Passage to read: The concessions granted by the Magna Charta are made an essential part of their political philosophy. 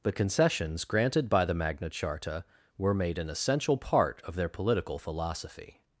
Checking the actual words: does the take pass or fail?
fail